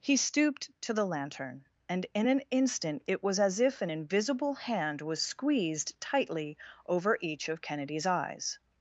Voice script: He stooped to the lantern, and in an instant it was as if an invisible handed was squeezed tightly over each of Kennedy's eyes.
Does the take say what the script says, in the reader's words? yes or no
no